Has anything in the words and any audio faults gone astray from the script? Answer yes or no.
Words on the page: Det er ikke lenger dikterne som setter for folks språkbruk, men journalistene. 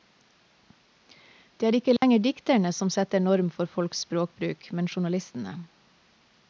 yes